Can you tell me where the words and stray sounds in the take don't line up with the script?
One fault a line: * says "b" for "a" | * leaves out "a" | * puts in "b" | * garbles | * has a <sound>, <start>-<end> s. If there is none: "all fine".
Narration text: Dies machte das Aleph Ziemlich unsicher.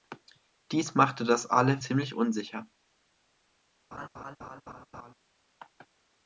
* has a laugh, 3.9-5.1 s